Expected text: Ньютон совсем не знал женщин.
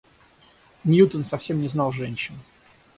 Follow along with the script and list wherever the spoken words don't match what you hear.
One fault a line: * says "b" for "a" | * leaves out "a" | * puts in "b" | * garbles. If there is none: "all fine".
all fine